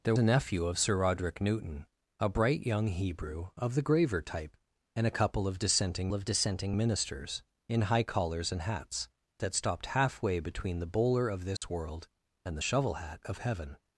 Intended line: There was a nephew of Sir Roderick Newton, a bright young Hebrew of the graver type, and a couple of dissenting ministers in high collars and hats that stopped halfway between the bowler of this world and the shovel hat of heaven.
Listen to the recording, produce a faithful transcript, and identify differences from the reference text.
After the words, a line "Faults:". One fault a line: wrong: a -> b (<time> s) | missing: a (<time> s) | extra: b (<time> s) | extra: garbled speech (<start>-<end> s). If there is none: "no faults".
There a nephew of Sir Roderick Newton, a bright young Hebrew of the graver type, and a couple of dissenting of dissenting ministers in high collars and hats that stopped halfway between the bowler of this world and the shovel hat of heaven.
Faults:
missing: was (0.1 s)
extra: of dissenting (6.1 s)